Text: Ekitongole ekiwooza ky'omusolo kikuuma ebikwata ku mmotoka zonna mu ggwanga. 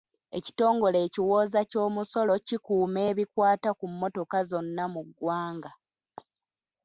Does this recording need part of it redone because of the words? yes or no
no